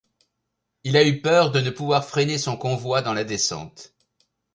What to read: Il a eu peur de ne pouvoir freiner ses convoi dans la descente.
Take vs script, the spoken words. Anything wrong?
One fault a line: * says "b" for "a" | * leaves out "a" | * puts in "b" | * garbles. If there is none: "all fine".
* says "son" for "ses"